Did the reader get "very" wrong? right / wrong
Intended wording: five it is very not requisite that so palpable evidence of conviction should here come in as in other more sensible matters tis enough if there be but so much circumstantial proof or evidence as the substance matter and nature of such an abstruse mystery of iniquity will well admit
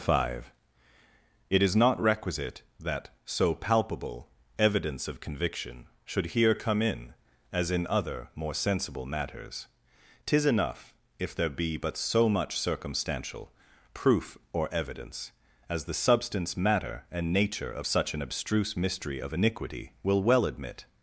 wrong